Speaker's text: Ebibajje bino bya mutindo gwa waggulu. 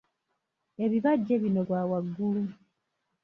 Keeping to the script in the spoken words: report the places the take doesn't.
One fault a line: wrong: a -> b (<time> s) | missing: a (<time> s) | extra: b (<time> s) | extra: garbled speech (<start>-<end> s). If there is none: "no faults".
missing: bya mutindo (1.6 s)